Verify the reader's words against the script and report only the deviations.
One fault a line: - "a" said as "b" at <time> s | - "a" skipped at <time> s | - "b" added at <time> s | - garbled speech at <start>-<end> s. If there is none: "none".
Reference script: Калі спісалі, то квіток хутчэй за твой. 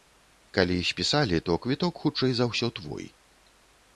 - "ўсё" added at 2.5 s